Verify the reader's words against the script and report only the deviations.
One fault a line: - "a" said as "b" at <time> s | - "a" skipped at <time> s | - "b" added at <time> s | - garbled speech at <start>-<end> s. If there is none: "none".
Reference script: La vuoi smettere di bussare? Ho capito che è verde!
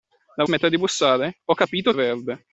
- "vuoi" skipped at 0.5 s
- "che" skipped at 1.9 s